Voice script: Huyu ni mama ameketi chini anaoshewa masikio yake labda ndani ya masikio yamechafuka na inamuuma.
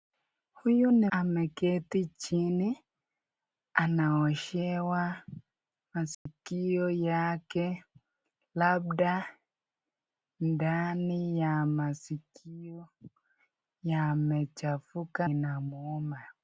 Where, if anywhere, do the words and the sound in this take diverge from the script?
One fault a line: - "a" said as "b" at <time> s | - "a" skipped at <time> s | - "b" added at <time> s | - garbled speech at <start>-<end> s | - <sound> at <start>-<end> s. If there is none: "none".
- "mama" skipped at 1.1 s
- dropout at 6.1-6.3 s
- "na" skipped at 15.3 s